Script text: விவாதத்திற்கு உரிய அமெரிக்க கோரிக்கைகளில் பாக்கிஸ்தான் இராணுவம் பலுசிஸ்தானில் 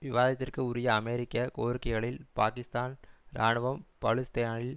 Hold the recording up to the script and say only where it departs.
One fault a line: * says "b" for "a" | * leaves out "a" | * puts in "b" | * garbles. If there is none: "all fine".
all fine